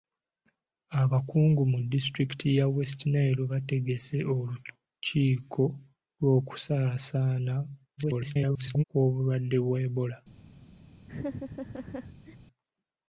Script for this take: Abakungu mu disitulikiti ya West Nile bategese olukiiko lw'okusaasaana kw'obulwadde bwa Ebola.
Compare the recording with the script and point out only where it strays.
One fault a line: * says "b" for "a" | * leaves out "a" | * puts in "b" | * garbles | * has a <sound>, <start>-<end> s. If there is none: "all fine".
* garbles
* has a laugh, 11.1-12.4 s